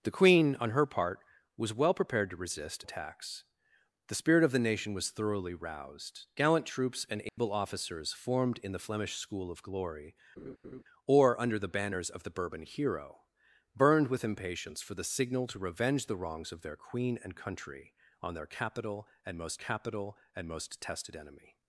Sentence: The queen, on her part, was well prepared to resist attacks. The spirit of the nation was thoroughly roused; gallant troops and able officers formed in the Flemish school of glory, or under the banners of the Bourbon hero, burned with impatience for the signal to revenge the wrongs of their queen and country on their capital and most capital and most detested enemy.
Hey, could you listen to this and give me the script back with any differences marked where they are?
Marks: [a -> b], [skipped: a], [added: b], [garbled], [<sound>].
The queen, on her part, was well prepared to resist attacks. The spirit of the nation was thoroughly roused; gallant troops and able [dropout] officers formed in the Flemish school of glory, [laugh] or under the banners of the Bourbon hero, burned with impatience for the signal to revenge the wrongs of their queen and country on their capital and most capital and most detested enemy.